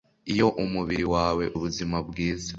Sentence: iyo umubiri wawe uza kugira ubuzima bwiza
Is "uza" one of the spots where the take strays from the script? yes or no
yes